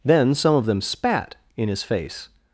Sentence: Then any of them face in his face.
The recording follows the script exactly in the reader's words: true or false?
false